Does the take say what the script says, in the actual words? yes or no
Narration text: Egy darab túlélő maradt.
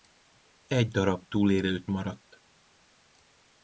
yes